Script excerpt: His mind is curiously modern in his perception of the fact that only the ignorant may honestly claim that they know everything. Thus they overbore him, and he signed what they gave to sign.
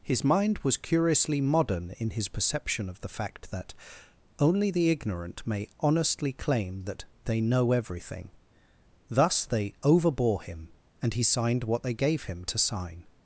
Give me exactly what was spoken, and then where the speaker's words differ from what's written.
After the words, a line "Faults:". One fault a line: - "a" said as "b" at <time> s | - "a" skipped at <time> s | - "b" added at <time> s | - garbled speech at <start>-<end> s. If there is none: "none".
His mind was curiously modern in his perception of the fact that only the ignorant may honestly claim that they know everything. Thus they overbore him, and he signed what they gave him to sign.
Faults:
- "is" said as "was" at 0.6 s
- "him" added at 12.2 s